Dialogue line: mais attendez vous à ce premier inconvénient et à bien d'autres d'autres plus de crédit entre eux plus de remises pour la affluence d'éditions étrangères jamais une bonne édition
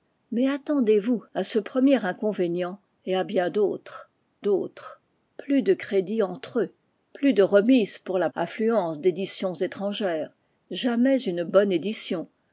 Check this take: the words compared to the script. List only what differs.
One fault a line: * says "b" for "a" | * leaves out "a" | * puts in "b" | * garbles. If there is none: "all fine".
all fine